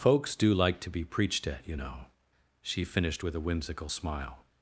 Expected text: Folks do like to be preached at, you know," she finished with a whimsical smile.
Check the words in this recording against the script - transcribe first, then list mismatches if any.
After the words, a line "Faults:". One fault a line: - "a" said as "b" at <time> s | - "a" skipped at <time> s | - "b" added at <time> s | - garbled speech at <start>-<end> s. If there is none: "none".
Folks do like to be preached at, you know," she finished with a whimsical smile.
Faults:
none